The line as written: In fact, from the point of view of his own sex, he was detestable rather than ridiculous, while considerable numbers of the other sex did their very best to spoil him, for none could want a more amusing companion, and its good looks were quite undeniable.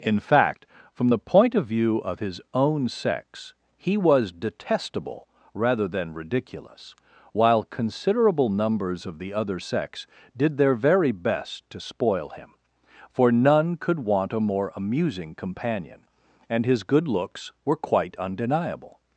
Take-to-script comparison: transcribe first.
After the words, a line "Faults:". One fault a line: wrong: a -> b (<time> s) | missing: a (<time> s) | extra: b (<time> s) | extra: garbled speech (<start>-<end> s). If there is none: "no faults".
In fact, from the point of view of his own sex, he was detestable rather than ridiculous, while considerable numbers of the other sex did their very best to spoil him, for none could want a more amusing companion, and his good looks were quite undeniable.
Faults:
wrong: its -> his (16.6 s)